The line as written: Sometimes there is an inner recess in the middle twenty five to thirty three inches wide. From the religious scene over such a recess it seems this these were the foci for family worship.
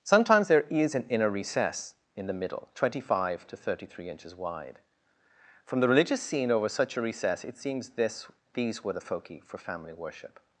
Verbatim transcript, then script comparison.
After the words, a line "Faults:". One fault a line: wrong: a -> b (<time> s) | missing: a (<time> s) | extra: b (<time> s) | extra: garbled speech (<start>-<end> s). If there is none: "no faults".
Sometimes there is an inner recess in the middle twenty five to thirty three inches wide. From the religious scene over such a recess it seems this these were the foci for family worship.
Faults:
no faults